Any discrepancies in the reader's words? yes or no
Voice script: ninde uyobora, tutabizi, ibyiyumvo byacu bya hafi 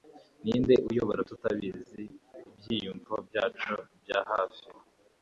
no